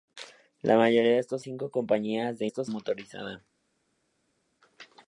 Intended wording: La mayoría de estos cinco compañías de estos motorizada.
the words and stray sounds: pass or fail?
pass